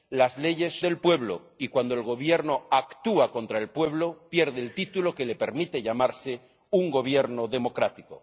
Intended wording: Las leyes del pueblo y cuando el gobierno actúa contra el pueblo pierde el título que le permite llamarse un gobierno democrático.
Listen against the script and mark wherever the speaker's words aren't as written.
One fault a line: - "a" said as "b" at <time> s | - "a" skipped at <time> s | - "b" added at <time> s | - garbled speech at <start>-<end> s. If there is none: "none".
none